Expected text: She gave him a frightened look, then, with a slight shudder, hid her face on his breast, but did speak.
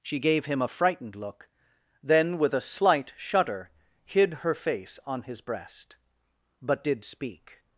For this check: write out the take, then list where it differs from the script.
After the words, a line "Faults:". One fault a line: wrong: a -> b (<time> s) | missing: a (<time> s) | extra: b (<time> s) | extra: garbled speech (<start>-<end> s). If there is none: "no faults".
She gave him a frightened look, then, with a slight shudder, hid her face on his breast, but did speak.
Faults:
no faults